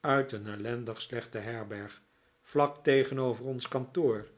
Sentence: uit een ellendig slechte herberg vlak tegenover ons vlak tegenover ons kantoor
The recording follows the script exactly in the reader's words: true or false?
false